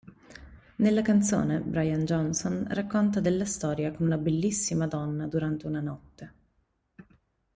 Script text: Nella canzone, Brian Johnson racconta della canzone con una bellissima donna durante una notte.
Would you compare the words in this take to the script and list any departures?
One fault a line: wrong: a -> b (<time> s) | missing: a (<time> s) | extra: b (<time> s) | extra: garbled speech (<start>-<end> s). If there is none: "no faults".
wrong: canzone -> storia (3.5 s)